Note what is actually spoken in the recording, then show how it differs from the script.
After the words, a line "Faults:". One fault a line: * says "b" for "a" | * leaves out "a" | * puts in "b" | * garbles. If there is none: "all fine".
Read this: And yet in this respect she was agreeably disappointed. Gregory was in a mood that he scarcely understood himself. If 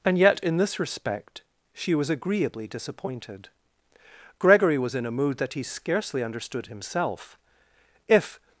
And yet in this respect she was agreeably disappointed. Gregory was in a mood that he scarcely understood himself. If
Faults:
all fine